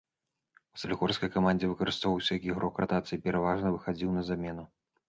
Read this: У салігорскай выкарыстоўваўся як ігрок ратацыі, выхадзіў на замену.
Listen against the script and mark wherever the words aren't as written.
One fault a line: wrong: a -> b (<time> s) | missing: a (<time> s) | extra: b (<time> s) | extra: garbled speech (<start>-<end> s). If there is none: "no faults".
extra: камандзе (1.3 s)
extra: пераважна (3.3 s)